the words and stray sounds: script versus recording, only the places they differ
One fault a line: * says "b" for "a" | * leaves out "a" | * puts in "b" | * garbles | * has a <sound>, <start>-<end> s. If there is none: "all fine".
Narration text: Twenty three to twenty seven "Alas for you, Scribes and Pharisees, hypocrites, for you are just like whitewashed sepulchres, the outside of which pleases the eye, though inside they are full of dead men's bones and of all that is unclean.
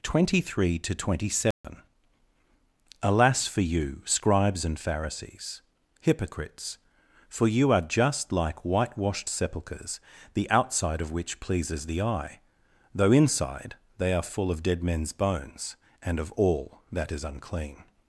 * has a dropout, 1.5-1.6 s